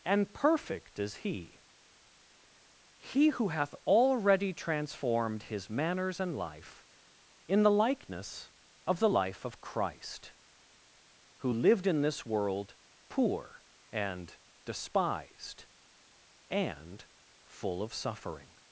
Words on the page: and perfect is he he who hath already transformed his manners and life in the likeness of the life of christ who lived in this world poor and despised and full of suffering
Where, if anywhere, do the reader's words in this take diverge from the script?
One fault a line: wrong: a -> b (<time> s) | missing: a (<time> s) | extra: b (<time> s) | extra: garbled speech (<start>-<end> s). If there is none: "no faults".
no faults